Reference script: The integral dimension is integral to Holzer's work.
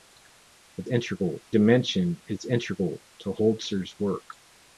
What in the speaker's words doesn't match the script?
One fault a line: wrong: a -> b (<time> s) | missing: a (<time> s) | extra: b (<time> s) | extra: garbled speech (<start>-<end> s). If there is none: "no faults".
no faults